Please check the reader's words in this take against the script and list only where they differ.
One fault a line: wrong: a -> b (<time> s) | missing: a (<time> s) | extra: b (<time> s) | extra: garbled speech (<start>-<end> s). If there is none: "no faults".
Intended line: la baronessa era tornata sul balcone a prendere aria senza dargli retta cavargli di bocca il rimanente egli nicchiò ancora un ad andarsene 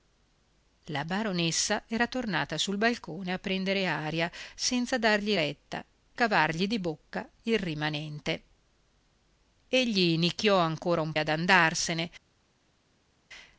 no faults